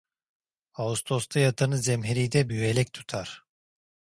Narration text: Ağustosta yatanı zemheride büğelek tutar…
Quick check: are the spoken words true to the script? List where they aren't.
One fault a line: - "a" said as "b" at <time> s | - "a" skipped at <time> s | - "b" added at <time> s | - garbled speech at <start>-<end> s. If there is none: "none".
none